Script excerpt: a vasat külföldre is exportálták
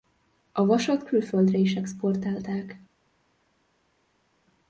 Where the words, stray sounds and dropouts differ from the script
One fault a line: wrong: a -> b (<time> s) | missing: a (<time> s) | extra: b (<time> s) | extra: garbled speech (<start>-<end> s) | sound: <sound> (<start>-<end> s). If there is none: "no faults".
no faults